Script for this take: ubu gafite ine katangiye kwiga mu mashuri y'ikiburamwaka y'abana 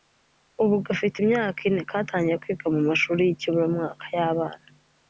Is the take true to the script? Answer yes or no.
no